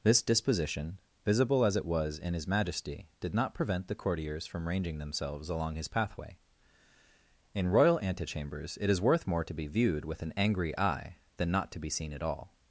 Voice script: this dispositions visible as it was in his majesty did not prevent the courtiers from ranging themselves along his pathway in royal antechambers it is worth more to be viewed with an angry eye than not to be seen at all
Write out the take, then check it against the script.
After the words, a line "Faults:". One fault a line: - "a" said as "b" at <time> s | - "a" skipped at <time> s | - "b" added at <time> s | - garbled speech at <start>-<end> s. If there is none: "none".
this disposition visible as it was in his majesty did not prevent the courtiers from ranging themselves along his pathway in royal antechambers it is worth more to be viewed with an angry eye than not to be seen at all
Faults:
- "dispositions" said as "disposition" at 0.2 s